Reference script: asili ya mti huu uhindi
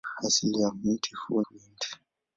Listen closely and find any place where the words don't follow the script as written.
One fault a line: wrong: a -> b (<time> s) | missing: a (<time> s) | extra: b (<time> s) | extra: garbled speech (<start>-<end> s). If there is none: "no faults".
no faults